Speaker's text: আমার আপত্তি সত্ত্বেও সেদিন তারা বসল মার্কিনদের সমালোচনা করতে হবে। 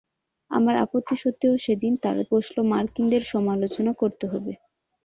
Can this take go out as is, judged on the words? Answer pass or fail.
pass